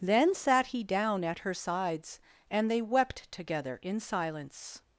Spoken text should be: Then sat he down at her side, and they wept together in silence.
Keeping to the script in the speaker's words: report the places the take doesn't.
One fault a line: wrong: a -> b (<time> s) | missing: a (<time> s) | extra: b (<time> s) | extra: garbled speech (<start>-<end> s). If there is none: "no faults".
wrong: side -> sides (1.5 s)